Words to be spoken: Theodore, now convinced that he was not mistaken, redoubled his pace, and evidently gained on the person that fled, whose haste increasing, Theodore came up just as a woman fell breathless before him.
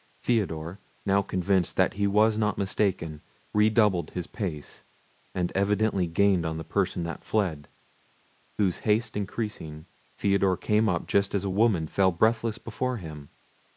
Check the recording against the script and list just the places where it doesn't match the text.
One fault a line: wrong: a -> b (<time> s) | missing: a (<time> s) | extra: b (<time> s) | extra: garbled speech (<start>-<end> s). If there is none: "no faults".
no faults